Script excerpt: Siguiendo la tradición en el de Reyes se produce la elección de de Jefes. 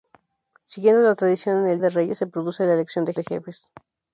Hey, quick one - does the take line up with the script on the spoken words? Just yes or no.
yes